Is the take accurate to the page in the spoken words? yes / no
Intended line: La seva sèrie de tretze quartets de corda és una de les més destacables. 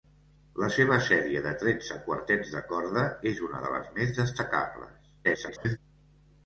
no